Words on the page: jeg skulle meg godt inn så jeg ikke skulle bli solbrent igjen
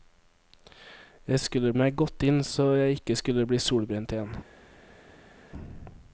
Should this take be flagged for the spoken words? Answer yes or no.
no